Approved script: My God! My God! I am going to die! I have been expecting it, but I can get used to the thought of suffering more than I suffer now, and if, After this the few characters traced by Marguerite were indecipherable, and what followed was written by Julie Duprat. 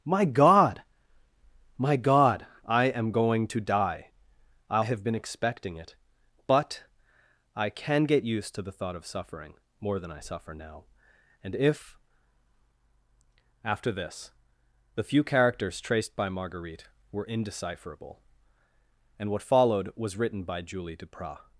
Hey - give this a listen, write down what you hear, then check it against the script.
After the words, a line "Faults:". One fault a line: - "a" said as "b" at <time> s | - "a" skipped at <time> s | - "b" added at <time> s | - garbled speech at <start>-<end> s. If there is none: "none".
My God! My God! I am going to die! I have been expecting it, but I can get used to the thought of suffering more than I suffer now, and if, After this the few characters traced by Marguerite were indecipherable, and what followed was written by Julie Duprat.
Faults:
none